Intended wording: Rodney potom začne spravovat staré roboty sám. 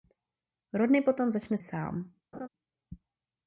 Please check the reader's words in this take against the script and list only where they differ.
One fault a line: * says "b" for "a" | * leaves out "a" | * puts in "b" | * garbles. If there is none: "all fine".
* leaves out "spravovat staré roboty"